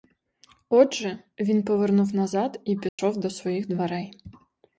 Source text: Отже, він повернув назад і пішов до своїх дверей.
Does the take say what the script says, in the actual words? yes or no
yes